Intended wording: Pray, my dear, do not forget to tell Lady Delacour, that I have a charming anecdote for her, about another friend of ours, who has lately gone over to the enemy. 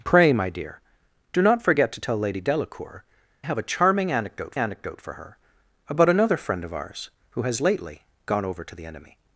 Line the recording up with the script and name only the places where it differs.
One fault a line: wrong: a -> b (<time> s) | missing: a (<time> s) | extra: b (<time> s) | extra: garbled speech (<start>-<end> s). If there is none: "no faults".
missing: that I (3.0 s)
extra: anecdote (4.6 s)